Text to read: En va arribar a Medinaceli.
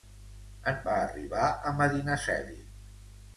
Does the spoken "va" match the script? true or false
true